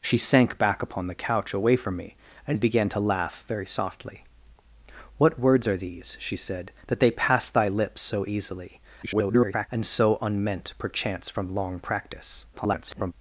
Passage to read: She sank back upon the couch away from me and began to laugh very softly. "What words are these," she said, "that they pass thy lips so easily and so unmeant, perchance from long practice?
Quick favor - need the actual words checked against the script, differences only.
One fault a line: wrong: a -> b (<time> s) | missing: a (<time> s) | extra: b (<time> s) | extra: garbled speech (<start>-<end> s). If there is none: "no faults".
extra: garbled speech (9.0-9.7 s)
extra: garbled speech (12.5-13.1 s)